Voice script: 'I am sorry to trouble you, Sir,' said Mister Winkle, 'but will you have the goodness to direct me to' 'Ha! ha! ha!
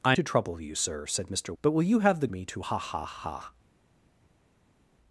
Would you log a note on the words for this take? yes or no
yes